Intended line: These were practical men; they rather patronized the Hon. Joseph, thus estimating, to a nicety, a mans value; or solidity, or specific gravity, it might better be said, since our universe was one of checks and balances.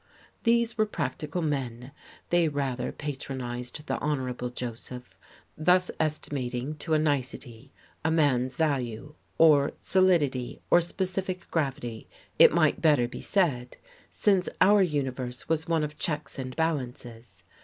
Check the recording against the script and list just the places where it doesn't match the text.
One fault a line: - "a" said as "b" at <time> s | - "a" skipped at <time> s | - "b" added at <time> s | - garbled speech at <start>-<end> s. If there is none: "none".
none